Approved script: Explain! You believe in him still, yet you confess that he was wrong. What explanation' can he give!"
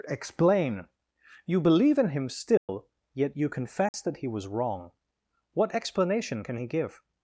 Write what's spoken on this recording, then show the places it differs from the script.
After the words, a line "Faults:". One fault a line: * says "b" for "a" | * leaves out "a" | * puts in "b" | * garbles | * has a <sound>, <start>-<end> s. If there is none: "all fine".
Explain! You believe in him still, yet you confess that he was wrong. What explanation' can he give!"
Faults:
* has a dropout, 2.6-2.7 s
* has a dropout, 3.9-3.9 s